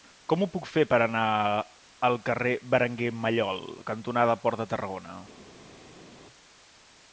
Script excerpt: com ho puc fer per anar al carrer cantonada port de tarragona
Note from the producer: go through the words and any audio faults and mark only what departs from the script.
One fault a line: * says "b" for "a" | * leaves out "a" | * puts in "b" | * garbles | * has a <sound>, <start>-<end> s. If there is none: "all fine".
* puts in "berenguer mallol"